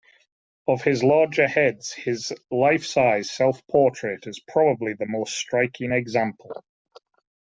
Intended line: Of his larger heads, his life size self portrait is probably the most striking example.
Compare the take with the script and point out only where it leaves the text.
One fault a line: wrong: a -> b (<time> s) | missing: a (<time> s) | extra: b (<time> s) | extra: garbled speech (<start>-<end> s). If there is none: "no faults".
no faults